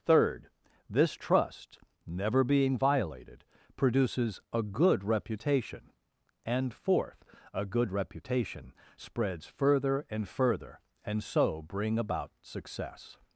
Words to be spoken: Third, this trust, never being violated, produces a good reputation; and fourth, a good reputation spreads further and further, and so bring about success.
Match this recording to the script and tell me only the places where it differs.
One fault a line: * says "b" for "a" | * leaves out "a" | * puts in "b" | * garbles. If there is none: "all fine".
all fine